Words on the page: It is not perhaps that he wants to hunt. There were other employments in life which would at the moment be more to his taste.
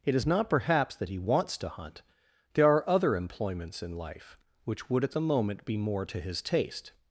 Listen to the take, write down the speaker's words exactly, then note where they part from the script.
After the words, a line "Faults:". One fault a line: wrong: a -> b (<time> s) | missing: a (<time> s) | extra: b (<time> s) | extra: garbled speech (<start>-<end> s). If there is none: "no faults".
It is not perhaps that he wants to hunt. There are other employments in life which would at the moment be more to his taste.
Faults:
wrong: were -> are (2.7 s)